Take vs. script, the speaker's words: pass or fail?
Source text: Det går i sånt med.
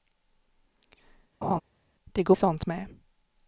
pass